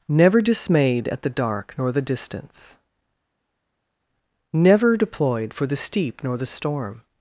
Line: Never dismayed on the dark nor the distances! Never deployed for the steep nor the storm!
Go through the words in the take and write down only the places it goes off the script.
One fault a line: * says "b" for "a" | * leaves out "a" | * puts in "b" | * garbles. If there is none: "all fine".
* says "at" for "on"
* says "distance" for "distances"